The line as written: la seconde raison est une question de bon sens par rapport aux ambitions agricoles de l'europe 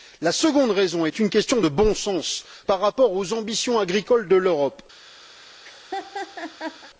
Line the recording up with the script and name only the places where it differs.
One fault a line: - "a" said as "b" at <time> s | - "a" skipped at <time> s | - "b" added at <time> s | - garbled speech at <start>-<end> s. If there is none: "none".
none